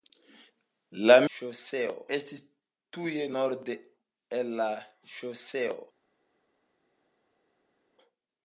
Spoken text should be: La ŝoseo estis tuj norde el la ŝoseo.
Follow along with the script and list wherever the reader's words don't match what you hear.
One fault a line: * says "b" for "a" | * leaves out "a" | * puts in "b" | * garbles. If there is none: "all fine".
all fine